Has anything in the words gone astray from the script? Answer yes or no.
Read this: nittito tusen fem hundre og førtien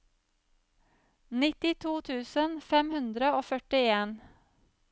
no